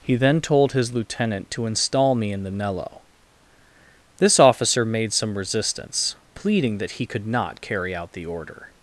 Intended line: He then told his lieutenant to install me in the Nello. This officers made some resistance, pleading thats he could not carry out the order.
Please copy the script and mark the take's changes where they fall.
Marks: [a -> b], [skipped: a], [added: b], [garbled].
He then told his lieutenant to install me in the Nello. This [officers -> officer] made some resistance, pleading [thats -> that] he could not carry out the order.